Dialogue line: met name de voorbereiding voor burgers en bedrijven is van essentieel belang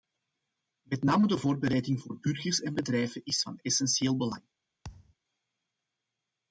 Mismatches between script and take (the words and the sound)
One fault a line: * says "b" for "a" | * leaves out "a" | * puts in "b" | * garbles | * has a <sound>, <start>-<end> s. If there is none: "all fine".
* has a thud, 4.8-5.2 s